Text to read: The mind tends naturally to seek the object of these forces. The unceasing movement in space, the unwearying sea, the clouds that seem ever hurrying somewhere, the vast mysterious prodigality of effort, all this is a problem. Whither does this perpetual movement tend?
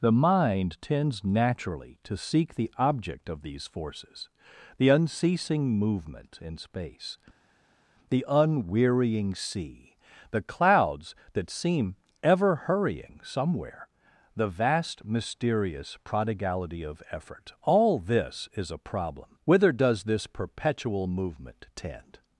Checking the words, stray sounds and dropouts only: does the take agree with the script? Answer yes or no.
yes